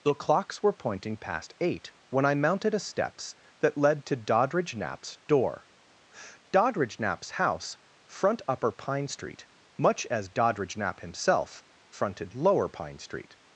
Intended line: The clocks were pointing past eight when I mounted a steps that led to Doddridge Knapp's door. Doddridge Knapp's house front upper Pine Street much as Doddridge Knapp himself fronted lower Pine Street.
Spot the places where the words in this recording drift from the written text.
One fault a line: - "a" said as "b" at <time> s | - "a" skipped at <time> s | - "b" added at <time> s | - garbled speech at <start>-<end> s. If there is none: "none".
none